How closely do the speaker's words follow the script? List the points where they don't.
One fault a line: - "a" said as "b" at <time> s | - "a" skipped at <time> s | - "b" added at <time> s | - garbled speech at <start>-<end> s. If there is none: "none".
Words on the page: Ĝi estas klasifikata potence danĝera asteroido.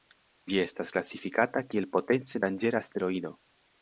- "kiel" added at 1.7 s